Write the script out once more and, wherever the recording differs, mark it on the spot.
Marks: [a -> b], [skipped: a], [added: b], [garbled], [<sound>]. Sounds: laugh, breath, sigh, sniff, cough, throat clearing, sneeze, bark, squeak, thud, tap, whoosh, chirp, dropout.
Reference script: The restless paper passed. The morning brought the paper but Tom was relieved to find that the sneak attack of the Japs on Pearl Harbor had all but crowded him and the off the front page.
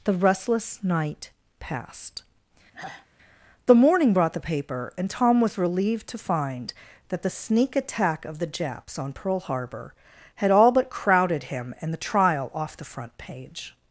The restless [paper -> night] passed. [sigh] The morning brought the paper [but -> and] Tom was relieved to find that the sneak attack of the Japs on Pearl Harbor had all but crowded him and the [added: trial] off the front page.